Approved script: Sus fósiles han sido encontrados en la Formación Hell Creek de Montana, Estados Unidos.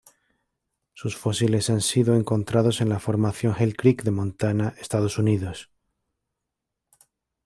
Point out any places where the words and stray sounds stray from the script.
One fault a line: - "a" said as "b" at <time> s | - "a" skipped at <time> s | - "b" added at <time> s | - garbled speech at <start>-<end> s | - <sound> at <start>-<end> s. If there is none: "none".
none